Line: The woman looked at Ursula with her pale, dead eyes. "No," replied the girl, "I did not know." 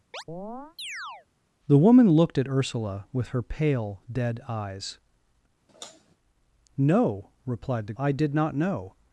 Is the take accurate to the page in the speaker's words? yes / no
no